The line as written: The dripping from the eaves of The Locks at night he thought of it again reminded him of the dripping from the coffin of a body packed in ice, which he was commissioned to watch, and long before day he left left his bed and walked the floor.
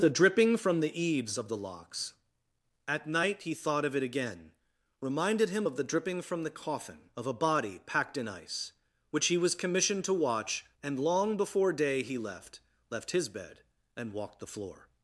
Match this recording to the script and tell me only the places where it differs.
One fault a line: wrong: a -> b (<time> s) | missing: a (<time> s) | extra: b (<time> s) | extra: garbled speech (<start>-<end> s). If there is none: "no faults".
no faults